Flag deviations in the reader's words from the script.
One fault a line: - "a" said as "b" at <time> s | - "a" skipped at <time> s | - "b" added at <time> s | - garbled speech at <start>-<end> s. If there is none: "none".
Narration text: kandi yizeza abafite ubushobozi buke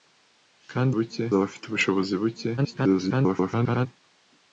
- "yizeza" said as "buke" at 1.0 s
- garbled speech at 2.6-3.9 s